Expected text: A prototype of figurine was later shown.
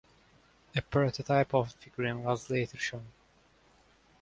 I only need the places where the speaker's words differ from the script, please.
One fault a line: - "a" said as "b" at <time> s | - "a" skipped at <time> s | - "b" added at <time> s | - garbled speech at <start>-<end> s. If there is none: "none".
none